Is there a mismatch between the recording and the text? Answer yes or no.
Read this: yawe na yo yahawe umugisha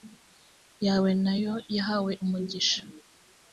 no